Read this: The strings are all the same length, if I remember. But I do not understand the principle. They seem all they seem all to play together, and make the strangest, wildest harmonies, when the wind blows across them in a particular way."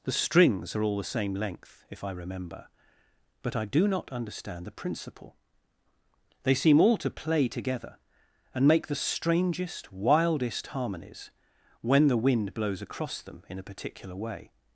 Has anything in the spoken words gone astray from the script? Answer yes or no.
yes